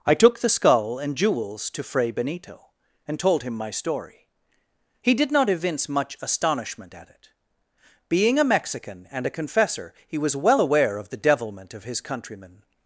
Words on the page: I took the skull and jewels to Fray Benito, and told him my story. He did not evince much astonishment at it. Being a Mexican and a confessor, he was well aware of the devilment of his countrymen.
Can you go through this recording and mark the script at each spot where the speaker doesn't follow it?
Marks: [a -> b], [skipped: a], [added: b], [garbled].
I took the skull and jewels to Fray Benito, and told him my story. He did not evince much astonishment at it. Being a Mexican and a confessor, he was well aware of the devilment of his countrymen.